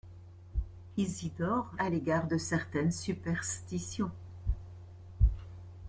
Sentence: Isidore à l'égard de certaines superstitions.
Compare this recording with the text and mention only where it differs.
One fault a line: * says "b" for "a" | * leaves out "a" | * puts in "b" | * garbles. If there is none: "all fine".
all fine